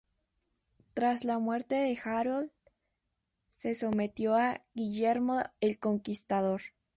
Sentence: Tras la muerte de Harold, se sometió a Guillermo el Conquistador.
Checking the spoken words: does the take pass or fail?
pass